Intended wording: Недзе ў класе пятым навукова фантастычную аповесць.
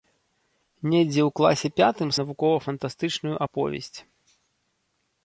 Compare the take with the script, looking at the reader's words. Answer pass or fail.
pass